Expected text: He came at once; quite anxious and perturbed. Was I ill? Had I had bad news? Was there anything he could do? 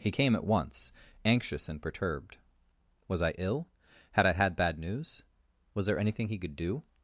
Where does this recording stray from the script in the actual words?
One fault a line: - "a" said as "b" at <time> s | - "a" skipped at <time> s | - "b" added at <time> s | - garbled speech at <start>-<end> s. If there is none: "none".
- "quite" skipped at 0.9 s